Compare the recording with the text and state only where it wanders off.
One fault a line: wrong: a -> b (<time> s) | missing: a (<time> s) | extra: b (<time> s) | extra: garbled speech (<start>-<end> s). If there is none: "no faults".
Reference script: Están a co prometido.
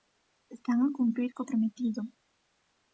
extra: cumprir (1.0 s)